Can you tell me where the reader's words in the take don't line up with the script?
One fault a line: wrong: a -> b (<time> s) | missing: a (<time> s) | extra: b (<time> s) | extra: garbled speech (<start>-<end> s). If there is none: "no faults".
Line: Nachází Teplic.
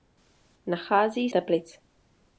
no faults